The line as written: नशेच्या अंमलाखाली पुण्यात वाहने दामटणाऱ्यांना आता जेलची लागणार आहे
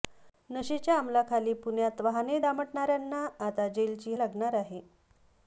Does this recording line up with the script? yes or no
yes